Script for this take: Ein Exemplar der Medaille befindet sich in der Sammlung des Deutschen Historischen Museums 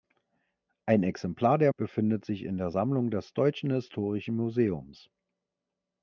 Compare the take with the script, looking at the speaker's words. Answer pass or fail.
fail